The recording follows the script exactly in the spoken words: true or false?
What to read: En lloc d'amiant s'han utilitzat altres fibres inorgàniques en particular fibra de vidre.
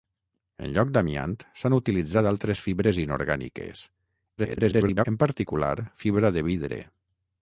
false